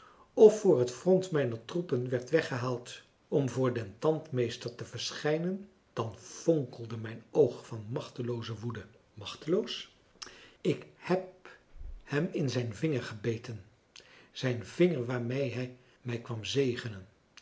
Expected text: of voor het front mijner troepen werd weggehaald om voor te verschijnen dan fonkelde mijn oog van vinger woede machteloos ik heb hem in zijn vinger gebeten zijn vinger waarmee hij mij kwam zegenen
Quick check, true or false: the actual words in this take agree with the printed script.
false